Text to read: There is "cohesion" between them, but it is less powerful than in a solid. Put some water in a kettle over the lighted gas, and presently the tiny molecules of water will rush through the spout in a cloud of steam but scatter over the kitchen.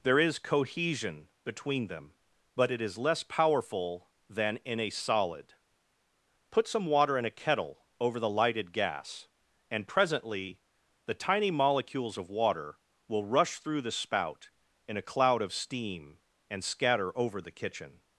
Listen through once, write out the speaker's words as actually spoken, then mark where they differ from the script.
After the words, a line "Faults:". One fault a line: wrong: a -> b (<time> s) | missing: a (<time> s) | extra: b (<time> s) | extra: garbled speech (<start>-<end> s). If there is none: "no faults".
There is "cohesion" between them, but it is less powerful than in a solid. Put some water in a kettle over the lighted gas, and presently the tiny molecules of water will rush through the spout in a cloud of steam and scatter over the kitchen.
Faults:
wrong: but -> and (16.5 s)